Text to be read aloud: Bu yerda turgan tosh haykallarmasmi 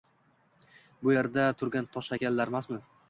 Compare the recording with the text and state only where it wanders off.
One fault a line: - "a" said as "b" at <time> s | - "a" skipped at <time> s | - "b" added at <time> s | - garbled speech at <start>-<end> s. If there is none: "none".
none